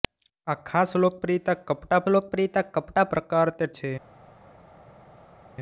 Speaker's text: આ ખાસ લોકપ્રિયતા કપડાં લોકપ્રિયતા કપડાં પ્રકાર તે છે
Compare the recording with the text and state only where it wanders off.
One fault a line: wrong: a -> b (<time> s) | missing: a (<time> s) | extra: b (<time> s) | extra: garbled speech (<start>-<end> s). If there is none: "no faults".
no faults